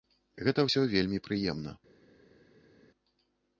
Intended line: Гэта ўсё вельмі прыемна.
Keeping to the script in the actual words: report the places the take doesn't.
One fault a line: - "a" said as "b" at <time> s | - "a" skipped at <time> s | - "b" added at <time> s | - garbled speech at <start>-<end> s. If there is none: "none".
none